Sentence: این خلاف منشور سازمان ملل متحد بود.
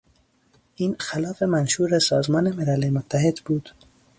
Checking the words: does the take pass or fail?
pass